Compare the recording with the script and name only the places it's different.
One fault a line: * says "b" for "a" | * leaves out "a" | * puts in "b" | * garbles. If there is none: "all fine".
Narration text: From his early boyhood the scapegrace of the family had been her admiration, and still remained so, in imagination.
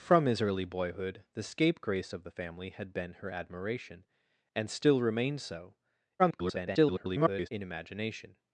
* garbles